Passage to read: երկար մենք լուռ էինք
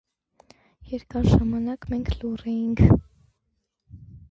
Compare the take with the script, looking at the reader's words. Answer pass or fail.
fail